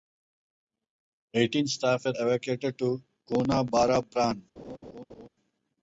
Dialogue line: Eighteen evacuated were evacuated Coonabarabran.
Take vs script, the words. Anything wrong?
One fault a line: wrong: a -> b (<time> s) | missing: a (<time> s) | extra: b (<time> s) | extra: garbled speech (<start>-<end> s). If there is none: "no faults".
wrong: evacuated -> staff (1.7 s)
extra: to (2.8 s)